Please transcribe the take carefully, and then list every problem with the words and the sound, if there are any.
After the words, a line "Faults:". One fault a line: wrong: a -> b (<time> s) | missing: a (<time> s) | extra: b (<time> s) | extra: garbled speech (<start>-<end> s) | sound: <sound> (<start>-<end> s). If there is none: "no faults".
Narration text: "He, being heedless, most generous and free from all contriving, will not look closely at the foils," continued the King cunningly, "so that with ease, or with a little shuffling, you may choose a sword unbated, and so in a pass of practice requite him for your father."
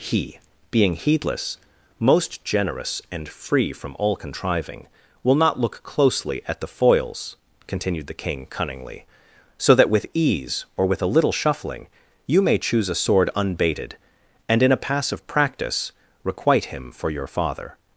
"He, being heedless, most generous and free from all contriving, will not look closely at the foils," continued the King cunningly, "so that with ease, or with a little shuffling, you may choose a sword unbated, and in a pass of practice requite him for your father."
Faults:
missing: so (14.6 s)